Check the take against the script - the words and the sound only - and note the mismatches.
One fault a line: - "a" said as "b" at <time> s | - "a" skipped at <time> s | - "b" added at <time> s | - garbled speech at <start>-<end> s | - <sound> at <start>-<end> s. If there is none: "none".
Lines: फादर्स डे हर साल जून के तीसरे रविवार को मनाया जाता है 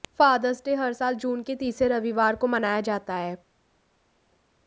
none